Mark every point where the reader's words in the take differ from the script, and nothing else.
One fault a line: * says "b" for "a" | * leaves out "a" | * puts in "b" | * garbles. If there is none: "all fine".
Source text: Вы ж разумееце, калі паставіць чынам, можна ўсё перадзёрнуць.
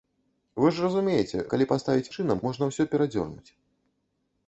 all fine